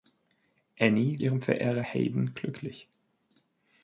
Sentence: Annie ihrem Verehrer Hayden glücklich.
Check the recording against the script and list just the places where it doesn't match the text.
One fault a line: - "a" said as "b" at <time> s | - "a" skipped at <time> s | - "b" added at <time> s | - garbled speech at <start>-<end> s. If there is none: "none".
none